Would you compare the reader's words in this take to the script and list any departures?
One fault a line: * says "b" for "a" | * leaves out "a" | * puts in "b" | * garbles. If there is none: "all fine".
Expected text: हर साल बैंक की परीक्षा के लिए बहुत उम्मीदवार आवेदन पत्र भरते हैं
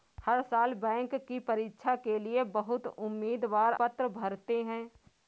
* leaves out "आवेदन"